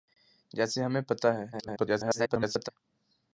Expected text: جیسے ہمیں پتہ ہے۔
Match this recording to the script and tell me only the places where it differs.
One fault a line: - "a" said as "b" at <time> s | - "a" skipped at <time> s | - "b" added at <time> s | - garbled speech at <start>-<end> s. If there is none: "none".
- garbled speech at 1.5-2.7 s